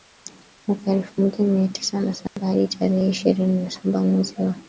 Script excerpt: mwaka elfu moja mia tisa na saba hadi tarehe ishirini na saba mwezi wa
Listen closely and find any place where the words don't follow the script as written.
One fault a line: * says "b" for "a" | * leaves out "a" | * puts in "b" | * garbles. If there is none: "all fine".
all fine